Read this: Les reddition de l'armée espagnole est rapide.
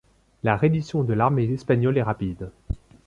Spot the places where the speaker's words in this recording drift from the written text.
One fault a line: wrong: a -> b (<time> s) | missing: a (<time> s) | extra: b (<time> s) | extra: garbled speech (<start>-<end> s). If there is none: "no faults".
wrong: Les -> La (0.4 s)